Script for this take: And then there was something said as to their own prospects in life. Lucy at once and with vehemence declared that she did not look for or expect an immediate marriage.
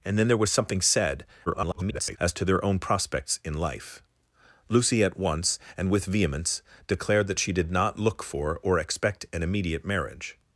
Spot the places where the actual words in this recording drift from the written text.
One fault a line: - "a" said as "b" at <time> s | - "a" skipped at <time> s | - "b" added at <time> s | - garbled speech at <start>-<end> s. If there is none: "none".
- garbled speech at 1.5-2.2 s